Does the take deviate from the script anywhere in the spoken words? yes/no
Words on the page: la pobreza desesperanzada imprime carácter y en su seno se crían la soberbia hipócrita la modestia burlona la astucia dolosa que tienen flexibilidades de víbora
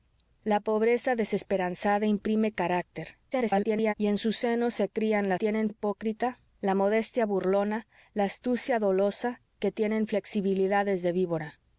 yes